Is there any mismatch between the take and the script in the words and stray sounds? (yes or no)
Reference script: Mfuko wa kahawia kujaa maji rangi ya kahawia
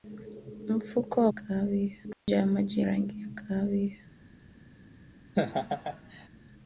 yes